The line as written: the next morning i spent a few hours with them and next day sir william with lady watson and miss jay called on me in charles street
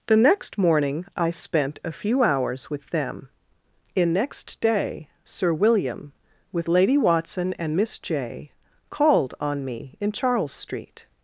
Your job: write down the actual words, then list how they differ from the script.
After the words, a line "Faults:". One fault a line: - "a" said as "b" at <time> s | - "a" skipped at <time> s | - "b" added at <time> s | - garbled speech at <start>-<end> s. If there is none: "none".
the next morning i spent a few hours with them in next day sir william with lady watson and miss jay called on me in charles street
Faults:
- "and" said as "in" at 3.9 s